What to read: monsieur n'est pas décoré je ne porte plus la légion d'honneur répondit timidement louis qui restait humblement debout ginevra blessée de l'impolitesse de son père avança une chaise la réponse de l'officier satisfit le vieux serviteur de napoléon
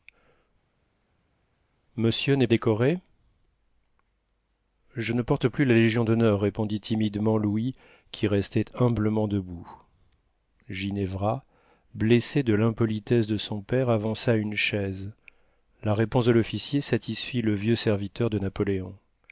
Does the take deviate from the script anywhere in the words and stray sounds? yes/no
yes